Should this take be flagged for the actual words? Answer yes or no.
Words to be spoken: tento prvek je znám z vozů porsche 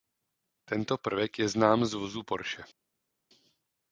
no